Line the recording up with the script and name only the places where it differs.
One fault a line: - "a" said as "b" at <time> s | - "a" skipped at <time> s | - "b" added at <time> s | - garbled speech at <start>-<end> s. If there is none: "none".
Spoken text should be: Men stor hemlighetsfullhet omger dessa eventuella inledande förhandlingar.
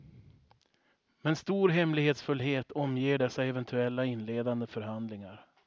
none